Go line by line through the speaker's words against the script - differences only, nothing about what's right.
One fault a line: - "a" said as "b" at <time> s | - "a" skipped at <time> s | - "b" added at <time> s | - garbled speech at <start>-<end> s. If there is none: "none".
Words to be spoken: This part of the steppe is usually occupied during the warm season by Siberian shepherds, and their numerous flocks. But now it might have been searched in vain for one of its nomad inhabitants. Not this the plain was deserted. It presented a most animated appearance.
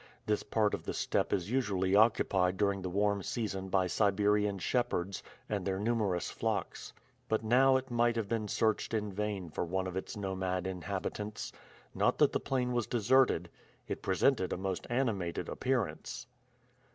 - "this" said as "that" at 12.2 s